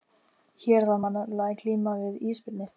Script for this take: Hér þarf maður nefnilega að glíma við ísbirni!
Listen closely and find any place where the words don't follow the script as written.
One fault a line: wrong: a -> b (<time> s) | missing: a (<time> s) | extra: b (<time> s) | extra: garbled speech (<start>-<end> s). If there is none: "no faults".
no faults